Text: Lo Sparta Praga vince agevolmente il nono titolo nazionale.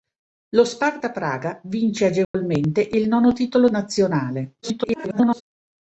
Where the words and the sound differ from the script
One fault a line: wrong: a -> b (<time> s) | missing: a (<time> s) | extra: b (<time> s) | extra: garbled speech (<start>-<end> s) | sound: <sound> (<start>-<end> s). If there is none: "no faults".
sound: dropout (2.2-2.3 s)
extra: garbled speech (4.6-5.4 s)